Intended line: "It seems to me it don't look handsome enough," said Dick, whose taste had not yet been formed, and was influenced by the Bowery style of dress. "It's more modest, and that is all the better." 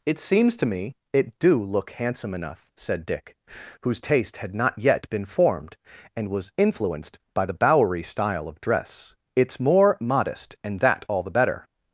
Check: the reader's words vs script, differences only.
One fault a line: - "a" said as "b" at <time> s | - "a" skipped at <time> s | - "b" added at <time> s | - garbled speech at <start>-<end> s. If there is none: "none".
- "don't" said as "do" at 1.4 s
- "is" skipped at 11.1 s